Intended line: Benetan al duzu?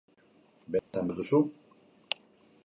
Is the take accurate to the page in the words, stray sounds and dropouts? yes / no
no